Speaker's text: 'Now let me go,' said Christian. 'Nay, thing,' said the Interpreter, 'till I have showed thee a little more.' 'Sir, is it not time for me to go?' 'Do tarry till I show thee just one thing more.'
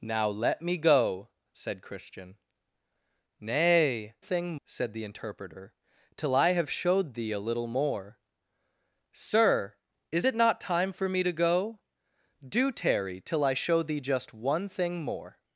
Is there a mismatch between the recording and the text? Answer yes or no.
no